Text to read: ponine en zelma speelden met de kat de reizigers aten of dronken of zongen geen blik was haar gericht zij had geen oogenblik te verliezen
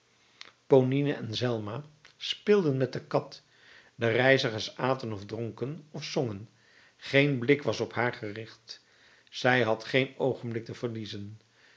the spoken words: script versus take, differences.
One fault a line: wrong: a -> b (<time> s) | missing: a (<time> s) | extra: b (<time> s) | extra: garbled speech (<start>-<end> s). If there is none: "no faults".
extra: op (7.8 s)